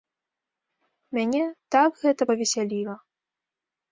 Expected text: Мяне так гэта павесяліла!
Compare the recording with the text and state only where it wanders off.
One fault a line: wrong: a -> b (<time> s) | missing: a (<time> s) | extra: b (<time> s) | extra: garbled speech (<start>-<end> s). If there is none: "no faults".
no faults